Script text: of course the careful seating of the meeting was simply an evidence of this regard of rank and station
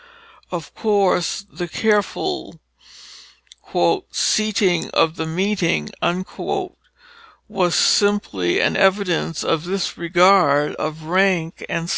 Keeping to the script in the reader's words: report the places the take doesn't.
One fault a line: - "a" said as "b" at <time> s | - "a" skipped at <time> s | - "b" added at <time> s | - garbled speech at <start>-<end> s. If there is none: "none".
none